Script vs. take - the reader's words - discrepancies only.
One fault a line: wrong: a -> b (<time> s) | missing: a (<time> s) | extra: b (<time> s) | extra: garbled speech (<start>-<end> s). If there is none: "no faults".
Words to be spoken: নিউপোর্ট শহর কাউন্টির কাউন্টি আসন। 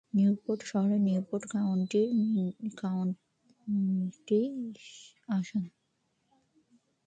extra: নিউপোর্ট (1.1 s)